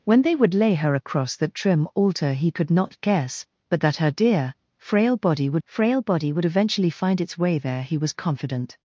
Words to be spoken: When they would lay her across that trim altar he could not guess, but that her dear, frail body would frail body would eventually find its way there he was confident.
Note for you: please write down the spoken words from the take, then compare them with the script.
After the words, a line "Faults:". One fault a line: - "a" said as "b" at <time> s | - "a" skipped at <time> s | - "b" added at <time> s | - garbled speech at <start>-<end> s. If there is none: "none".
When they would lay her across that trim altar he could not guess, but that her dear, frail body would frail body would eventually find its way there he was confident.
Faults:
none